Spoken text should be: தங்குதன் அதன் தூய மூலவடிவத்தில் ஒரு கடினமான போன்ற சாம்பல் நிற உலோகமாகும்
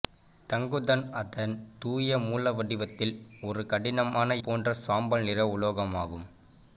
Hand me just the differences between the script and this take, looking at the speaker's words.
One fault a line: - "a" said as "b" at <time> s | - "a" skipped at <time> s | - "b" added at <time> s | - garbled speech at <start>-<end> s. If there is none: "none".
none